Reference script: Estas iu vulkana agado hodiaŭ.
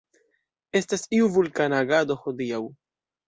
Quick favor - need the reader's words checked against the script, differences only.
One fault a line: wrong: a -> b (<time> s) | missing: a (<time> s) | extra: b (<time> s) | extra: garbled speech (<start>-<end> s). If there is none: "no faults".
no faults